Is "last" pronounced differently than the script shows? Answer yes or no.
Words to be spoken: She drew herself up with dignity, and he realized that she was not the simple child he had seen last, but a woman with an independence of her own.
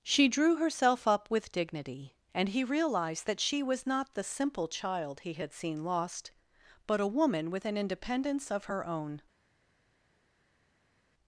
yes